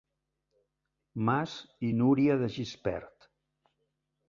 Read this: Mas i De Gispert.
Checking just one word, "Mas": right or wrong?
right